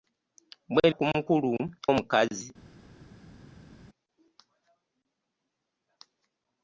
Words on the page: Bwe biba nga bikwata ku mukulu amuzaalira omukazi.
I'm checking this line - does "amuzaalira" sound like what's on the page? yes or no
no